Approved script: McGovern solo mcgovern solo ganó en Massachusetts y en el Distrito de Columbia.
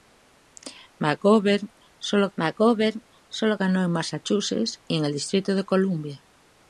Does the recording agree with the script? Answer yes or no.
yes